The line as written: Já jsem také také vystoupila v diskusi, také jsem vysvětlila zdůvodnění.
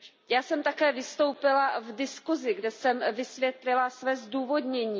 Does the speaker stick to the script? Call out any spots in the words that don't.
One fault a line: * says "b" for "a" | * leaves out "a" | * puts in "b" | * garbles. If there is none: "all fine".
* leaves out "také"
* says "kde" for "také"
* puts in "své"